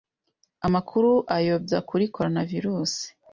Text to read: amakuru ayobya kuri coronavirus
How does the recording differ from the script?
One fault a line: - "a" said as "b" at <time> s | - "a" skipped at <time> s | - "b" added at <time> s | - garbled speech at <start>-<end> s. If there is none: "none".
none